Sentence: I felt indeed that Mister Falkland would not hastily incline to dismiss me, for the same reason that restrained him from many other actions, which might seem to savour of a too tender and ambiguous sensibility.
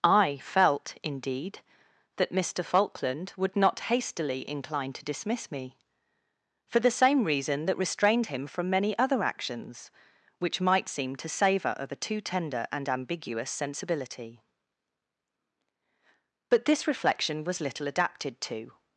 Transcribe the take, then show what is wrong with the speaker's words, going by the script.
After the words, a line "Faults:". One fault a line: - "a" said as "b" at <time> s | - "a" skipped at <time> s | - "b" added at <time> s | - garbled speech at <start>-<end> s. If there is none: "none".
I felt indeed that Mister Falkland would not hastily incline to dismiss me, for the same reason that restrained him from many other actions, which might seem to savour of a too tender and ambiguous sensibility. But this reflection was little adapted to
Faults:
- "But this reflection was little adapted to" added at 16.5 s